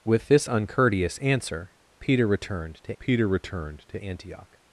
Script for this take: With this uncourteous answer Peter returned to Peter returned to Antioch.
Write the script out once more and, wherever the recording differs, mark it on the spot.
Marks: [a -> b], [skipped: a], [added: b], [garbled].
With this uncourteous answer Peter returned to Peter returned to Antioch.